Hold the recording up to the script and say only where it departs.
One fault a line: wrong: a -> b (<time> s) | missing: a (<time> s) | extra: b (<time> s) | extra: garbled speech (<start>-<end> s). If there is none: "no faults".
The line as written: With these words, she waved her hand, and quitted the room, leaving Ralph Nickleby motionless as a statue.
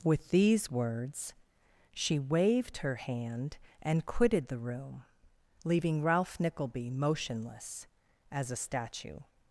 no faults